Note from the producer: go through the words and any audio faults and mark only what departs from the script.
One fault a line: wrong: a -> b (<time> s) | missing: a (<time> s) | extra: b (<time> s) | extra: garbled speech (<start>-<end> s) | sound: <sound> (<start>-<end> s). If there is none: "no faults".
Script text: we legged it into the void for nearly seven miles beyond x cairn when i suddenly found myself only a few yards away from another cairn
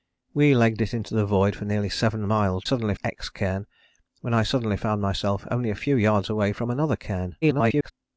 wrong: beyond -> suddenly (2.6 s)
extra: garbled speech (7.4-7.9 s)